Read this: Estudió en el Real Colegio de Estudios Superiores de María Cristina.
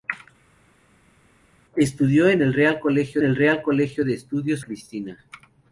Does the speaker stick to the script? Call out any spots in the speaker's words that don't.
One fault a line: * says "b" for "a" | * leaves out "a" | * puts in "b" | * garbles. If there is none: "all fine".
* says "el Real Colegio" for "de Estudios Superiores"
* says "Estudios" for "María"